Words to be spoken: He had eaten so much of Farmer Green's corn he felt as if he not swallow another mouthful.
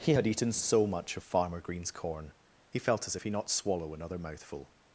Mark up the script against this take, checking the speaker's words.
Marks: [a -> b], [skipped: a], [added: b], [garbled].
He had eaten so much of Farmer Green's corn he felt as if he not swallow another mouthful.